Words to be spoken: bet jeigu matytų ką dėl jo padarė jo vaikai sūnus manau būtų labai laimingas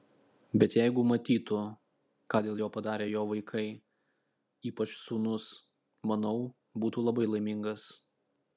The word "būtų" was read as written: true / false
true